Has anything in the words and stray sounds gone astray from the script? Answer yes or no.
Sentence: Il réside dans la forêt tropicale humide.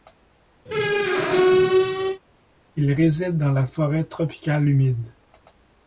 yes